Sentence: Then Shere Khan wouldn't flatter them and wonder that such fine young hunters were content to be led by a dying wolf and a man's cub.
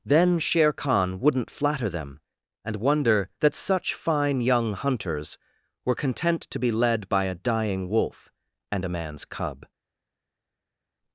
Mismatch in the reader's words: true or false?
false